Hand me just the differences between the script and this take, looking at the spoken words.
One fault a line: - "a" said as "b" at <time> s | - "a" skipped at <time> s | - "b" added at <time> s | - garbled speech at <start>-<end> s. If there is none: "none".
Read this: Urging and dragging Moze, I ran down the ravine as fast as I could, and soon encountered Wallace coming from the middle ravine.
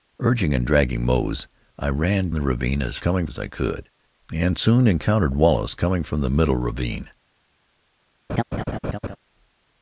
- "down" skipped at 2.3 s
- "fast" said as "coming" at 3.0 s